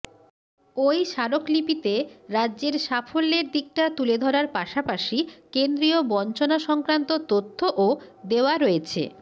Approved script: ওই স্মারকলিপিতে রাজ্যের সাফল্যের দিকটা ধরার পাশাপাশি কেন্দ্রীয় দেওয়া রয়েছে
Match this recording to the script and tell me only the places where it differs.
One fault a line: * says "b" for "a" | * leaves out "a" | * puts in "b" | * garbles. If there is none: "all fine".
* puts in "তুলে"
* puts in "বঞ্চনা সংক্রান্ত তথ্যও"